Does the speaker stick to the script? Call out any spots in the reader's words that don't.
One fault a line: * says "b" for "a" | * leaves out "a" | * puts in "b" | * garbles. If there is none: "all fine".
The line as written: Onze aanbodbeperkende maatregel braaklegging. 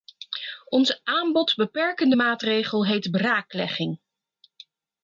* puts in "heet"